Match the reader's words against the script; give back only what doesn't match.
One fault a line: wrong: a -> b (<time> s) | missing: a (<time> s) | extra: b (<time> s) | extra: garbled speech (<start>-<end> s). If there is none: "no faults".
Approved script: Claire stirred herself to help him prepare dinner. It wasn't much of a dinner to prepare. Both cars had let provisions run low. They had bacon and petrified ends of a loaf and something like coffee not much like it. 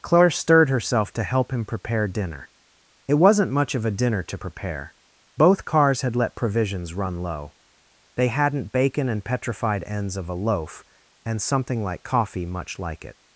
wrong: had -> hadn't (8.3 s)
missing: not (12.4 s)